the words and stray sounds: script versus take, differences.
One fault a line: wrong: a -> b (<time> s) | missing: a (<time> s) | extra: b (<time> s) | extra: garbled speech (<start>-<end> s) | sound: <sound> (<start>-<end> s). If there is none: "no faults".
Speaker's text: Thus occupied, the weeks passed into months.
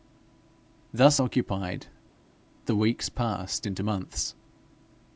no faults